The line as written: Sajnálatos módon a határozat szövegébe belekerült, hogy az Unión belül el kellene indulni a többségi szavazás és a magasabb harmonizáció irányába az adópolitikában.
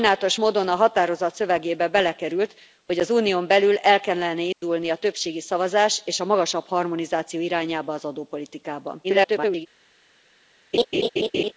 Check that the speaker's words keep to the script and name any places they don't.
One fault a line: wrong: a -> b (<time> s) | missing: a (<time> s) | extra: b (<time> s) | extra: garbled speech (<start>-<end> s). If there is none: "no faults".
extra: garbled speech (9.0-9.7 s)